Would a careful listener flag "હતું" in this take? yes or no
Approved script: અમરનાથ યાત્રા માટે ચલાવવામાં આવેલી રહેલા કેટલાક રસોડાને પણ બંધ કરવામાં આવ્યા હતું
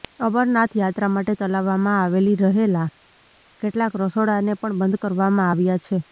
yes